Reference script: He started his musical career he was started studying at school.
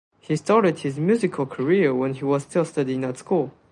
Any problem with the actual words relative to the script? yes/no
yes